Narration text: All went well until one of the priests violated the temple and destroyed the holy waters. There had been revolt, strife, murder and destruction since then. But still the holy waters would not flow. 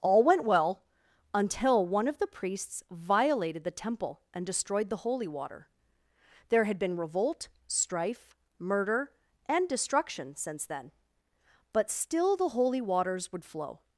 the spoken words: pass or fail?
fail